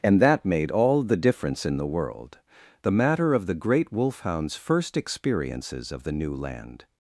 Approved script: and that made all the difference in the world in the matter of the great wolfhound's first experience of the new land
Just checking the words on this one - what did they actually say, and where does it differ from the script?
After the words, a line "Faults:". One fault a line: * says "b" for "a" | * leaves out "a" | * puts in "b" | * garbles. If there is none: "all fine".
and that made all the difference in the world the matter of the great wolfhound's first experiences of the new land
Faults:
* leaves out "in"
* says "experiences" for "experience"